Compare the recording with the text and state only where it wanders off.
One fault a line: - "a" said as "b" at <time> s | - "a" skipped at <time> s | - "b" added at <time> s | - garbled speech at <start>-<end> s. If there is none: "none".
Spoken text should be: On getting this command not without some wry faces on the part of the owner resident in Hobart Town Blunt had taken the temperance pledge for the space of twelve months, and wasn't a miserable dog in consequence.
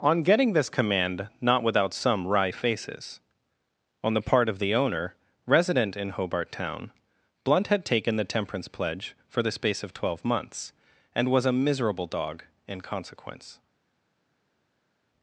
- "wasn't" said as "was" at 11.3 s